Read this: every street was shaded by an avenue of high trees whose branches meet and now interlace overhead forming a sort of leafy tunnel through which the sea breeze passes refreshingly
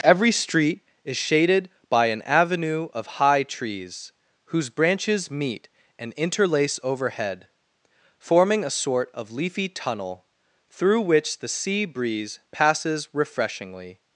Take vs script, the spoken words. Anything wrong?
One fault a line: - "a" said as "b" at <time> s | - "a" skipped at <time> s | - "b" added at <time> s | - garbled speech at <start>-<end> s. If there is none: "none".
- "was" said as "is" at 1.0 s
- "now" skipped at 6.1 s